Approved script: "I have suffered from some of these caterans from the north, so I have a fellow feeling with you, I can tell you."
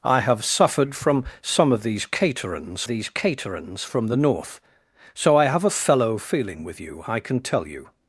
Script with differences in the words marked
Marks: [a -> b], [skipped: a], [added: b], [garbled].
"I have suffered from some of these caterans [added: these caterans] from the north, so I have a fellow feeling with you, I can tell you."